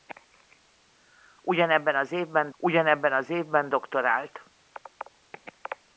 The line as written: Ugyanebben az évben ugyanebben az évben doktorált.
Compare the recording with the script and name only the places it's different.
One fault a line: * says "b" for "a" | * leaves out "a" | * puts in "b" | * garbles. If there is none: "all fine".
all fine